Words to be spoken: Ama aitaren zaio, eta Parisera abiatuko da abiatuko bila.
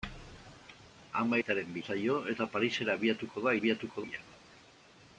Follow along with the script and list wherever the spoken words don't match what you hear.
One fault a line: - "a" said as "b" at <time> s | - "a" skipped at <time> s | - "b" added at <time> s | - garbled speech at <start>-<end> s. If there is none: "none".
none